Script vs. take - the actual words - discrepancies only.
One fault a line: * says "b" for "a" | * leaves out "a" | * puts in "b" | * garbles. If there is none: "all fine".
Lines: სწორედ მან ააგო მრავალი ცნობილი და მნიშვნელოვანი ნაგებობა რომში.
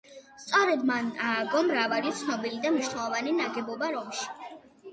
all fine